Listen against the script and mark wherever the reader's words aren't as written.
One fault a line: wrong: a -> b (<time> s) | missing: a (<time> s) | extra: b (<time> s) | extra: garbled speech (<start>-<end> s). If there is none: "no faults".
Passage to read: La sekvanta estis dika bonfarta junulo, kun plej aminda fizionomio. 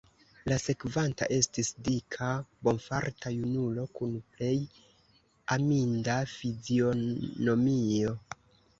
no faults